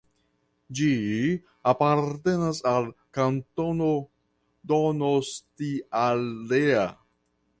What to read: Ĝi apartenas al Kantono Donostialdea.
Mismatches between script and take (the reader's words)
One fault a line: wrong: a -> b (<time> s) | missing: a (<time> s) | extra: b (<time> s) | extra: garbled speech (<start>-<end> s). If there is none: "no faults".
no faults